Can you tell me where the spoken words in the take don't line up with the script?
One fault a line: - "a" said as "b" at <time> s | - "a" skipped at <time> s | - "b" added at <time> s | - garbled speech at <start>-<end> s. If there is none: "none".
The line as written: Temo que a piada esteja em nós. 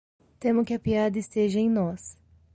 none